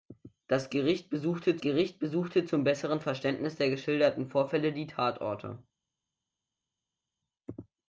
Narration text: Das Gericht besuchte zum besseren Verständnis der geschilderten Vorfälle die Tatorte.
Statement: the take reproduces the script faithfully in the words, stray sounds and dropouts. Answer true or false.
false